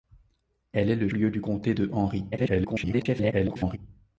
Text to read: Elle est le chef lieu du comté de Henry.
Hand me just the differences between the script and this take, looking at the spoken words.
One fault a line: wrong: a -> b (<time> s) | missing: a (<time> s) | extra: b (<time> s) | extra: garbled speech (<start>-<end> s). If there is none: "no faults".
missing: chef (1.1 s)
extra: garbled speech (2.3-3.8 s)